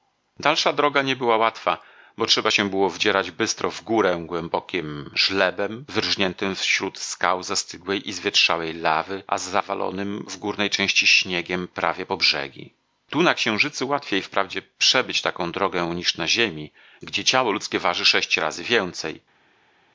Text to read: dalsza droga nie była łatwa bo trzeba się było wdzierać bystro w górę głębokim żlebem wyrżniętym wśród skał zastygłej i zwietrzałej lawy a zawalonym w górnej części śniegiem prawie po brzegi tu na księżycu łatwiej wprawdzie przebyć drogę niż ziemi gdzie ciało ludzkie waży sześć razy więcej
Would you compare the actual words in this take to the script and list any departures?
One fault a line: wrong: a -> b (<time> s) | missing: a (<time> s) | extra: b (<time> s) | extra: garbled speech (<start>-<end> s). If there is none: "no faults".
extra: taką (15.2 s)
extra: na (16.2 s)